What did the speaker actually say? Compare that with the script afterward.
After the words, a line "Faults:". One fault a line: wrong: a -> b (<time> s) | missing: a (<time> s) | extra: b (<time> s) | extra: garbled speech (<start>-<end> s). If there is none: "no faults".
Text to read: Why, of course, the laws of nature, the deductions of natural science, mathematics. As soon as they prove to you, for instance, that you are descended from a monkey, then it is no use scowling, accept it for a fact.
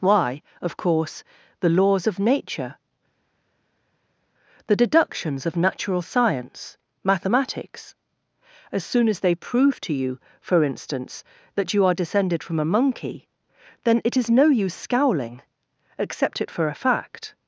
Why, of course, the laws of nature, the deductions of natural science, mathematics. As soon as they prove to you, for instance, that you are descended from a monkey, then it is no use scowling, accept it for a fact.
Faults:
no faults